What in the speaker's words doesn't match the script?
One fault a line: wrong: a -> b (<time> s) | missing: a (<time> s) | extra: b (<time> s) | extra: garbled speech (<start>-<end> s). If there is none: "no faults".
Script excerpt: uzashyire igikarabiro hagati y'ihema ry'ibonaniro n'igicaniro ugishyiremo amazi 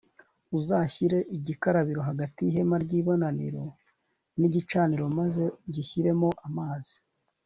extra: maze (5.2 s)